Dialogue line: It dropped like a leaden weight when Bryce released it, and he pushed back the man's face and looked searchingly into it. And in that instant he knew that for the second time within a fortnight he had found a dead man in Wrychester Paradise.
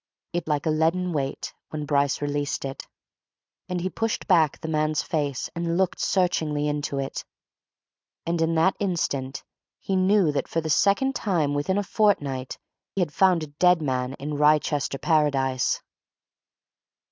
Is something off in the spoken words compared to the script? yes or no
yes